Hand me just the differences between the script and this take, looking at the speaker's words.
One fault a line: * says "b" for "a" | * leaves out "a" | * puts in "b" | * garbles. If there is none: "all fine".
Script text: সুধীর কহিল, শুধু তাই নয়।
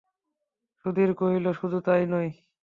all fine